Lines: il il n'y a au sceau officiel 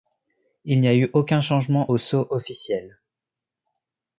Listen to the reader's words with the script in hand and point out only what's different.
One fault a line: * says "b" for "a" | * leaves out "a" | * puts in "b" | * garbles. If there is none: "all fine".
* leaves out "il"
* puts in "eu aucun changement"